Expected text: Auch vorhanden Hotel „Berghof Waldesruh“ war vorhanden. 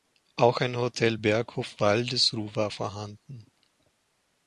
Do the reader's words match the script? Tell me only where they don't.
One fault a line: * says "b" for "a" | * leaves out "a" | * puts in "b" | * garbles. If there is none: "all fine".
* says "ein" for "vorhanden"